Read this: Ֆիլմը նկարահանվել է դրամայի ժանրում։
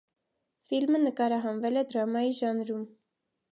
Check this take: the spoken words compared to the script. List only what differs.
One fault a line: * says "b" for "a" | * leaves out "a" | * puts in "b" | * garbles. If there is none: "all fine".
all fine